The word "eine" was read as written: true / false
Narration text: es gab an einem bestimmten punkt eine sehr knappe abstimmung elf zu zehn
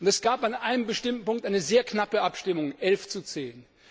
true